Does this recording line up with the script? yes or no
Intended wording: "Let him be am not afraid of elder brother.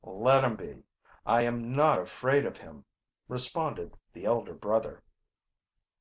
no